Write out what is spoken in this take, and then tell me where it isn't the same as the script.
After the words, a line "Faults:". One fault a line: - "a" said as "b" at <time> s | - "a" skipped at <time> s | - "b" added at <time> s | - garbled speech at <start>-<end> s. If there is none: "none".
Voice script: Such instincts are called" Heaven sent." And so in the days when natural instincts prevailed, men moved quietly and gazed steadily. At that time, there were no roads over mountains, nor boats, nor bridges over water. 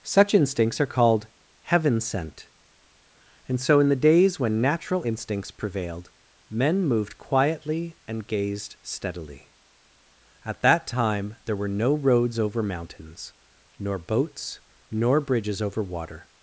Such instincts are called" Heaven sent." And so in the days when natural instincts prevailed, men moved quietly and gazed steadily. At that time, there were no roads over mountains, nor boats, nor bridges over water.
Faults:
none